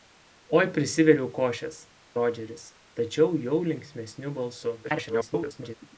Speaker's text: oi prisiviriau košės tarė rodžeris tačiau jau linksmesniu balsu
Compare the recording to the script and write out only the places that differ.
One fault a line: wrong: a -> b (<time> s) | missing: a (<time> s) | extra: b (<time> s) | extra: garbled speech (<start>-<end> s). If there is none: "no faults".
missing: tarė (1.8 s)
extra: garbled speech (4.8-5.8 s)